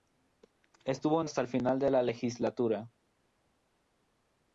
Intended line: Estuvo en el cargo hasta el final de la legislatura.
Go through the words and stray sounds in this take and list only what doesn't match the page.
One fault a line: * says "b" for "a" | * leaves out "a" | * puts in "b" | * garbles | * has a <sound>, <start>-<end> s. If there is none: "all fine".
* leaves out "el cargo"